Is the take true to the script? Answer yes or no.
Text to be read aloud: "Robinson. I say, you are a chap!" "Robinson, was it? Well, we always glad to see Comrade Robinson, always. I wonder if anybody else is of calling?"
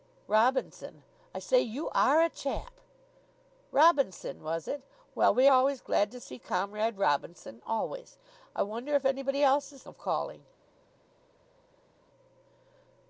yes